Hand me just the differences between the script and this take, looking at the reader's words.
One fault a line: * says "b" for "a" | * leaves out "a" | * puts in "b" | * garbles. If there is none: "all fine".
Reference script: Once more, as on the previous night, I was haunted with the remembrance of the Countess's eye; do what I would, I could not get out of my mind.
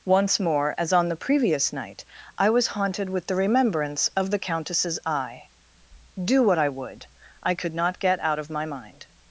all fine